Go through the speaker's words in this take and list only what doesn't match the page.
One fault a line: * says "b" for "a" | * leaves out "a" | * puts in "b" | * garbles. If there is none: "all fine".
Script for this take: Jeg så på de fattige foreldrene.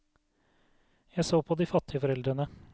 all fine